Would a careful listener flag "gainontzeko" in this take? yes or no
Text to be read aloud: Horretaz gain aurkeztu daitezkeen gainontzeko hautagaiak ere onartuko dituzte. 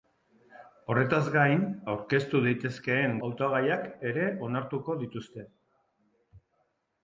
yes